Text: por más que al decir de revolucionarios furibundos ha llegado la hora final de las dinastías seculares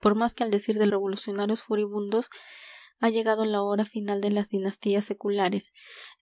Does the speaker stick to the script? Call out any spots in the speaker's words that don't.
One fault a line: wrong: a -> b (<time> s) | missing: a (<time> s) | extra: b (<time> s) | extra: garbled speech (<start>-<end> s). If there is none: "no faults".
no faults